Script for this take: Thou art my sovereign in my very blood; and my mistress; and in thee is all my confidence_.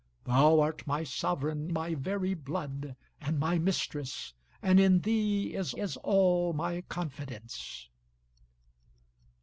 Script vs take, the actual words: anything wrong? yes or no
yes